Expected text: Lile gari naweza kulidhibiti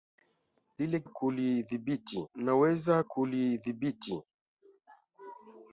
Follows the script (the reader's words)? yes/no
no